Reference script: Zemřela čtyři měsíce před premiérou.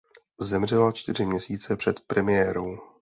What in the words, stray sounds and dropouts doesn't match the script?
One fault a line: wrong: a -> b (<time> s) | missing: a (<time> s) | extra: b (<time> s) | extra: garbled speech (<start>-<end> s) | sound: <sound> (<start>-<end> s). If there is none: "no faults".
no faults